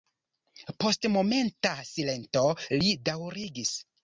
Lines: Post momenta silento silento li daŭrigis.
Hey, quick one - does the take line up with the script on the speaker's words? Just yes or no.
no